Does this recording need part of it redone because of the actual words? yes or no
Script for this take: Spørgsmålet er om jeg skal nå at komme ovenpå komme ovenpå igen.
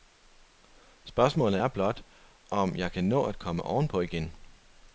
yes